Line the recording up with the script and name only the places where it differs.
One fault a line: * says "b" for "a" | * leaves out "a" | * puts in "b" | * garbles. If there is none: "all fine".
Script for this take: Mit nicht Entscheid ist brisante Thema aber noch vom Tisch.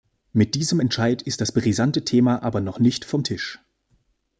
* says "diesem" for "nicht"
* puts in "das"
* puts in "nicht"